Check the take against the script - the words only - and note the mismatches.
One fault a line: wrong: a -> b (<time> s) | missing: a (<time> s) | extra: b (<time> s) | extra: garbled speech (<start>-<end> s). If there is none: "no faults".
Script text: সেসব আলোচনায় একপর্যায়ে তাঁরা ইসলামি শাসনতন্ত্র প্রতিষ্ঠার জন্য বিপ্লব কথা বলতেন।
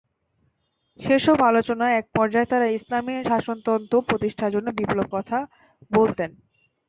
no faults